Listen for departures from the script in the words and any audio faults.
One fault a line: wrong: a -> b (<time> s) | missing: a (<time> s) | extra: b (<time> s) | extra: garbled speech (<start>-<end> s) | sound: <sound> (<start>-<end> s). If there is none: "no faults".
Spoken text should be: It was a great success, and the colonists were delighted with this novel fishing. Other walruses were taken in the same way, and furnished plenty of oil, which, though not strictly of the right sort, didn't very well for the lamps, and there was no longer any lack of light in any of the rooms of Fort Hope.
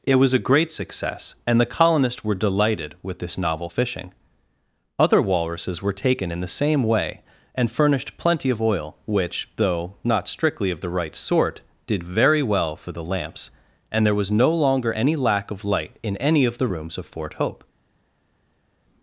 wrong: didn't -> did (11.8 s)